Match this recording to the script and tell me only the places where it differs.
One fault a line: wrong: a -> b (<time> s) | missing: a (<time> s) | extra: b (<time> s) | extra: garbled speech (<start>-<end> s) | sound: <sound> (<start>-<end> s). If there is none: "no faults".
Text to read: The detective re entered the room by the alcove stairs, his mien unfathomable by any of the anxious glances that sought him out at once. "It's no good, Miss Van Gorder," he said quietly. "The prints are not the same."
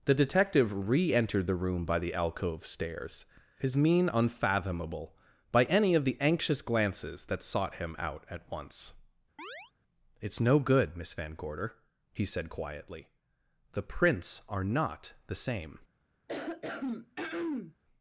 sound: chirp (9.4-9.7 s)
sound: throat clearing (16.3-17.7 s)